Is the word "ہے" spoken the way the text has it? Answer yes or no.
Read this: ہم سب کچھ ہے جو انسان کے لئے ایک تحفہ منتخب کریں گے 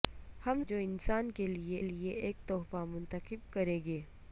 no